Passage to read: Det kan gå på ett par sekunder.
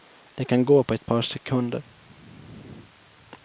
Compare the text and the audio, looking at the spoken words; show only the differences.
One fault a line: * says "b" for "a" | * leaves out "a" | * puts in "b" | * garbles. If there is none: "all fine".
all fine